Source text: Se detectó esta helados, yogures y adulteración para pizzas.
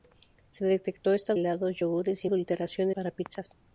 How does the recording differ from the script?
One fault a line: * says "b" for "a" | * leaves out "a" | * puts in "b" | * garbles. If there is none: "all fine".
all fine